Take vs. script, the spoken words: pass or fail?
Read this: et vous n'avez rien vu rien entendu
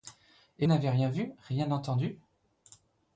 fail